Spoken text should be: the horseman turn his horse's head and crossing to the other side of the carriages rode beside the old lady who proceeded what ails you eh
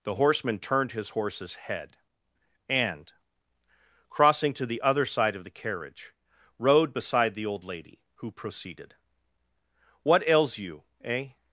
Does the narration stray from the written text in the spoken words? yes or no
yes